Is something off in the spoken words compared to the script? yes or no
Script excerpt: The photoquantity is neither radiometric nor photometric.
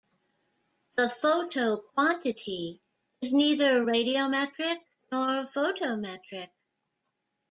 no